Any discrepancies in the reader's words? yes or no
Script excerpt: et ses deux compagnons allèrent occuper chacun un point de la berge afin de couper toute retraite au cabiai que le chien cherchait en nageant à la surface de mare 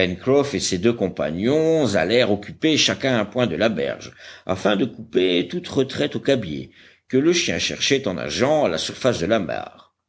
yes